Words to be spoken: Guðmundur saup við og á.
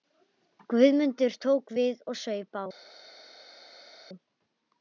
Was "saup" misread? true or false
true